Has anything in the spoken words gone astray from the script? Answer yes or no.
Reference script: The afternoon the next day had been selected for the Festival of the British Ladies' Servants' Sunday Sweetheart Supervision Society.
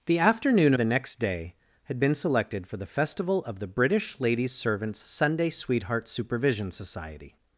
no